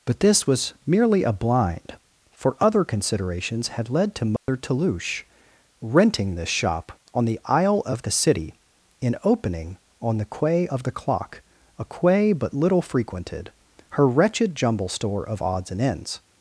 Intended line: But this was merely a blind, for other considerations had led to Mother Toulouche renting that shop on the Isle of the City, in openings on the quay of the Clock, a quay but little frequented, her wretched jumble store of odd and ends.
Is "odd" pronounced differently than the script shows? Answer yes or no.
yes